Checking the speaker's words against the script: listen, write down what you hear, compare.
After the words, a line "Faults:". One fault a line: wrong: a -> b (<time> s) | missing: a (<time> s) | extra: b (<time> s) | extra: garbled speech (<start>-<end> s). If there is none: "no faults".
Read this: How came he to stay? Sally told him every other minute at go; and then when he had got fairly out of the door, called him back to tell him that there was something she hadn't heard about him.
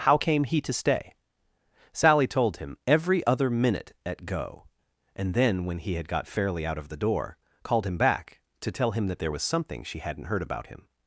How came he to stay? Sally told him every other minute at go; and then when he had got fairly out of the door, called him back to tell him that there was something she hadn't heard about him.
Faults:
no faults